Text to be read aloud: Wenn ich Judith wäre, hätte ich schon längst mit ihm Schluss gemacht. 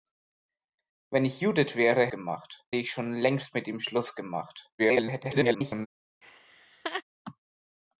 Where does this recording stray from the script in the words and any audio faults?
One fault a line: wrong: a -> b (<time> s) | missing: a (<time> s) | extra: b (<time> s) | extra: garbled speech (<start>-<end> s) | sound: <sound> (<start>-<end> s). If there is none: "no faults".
wrong: hätte -> gemacht (2.1 s)
extra: garbled speech (4.8-5.9 s)
sound: laugh (6.2-7.0 s)